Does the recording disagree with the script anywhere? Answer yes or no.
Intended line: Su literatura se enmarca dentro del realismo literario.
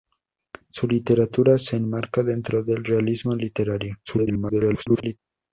yes